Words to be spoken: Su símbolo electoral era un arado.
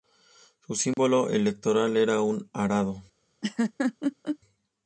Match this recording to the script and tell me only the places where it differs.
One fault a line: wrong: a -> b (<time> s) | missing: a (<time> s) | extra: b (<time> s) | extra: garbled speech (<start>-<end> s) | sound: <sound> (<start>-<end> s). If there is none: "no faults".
sound: dropout (0.9-1.0 s)
sound: laugh (3.4-4.4 s)